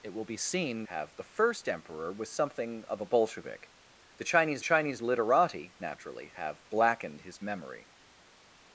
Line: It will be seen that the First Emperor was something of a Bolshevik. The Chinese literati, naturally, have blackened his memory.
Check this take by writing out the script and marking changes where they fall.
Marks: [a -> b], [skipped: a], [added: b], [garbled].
It will be seen [that -> have] the First Emperor was something of a Bolshevik. The Chinese [added: Chinese] literati, naturally, have blackened his memory.